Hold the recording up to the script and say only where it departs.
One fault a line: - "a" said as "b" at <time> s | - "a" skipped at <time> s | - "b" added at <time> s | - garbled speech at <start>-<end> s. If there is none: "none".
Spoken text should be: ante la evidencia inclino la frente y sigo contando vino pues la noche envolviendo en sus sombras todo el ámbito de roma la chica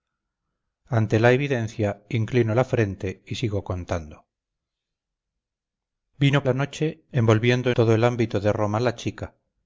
- "pues" skipped at 6.4 s
- "en sus sombras" skipped at 7.7 s